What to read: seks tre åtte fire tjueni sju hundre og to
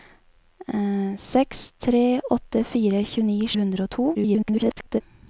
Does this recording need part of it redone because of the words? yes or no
yes